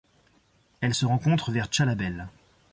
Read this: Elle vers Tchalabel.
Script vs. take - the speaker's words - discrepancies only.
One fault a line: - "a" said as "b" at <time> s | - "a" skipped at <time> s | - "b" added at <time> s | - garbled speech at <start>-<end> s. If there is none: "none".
- "se rencontre" added at 0.9 s